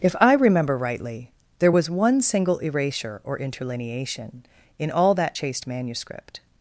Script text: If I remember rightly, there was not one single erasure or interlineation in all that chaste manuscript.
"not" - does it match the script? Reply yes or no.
no